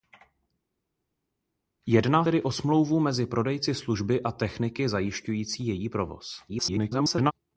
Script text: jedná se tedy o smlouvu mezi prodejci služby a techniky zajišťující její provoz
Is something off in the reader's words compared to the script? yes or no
yes